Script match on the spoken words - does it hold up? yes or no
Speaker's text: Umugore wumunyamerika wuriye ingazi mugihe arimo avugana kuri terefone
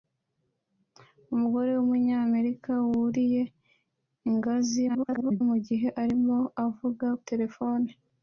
no